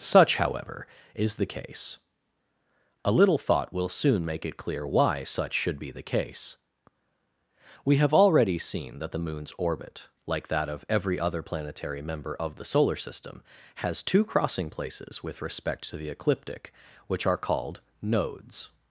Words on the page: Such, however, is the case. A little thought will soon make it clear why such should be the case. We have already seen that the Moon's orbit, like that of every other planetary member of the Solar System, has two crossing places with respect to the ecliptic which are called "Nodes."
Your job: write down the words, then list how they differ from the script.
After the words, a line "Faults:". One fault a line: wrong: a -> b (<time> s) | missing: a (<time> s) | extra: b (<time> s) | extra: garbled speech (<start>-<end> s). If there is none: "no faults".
Such, however, is the case. A little thought will soon make it clear why such should be the case. We have already seen that the Moon's orbit, like that of every other planetary member of the Solar System, has two crossing places with respect to the ecliptic which are called "Nodes."
Faults:
no faults